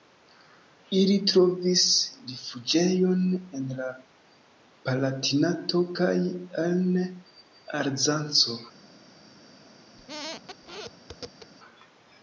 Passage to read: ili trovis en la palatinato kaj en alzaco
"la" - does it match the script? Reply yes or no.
yes